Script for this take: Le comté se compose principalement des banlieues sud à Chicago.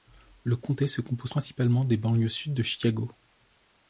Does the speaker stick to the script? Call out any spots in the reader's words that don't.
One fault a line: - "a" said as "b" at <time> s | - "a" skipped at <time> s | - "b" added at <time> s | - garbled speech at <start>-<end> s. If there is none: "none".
- "à" said as "de" at 2.5 s